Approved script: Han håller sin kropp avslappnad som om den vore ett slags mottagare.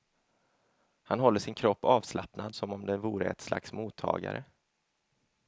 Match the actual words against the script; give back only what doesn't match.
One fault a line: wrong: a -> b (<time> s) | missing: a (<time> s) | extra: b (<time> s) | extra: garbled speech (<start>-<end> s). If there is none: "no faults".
no faults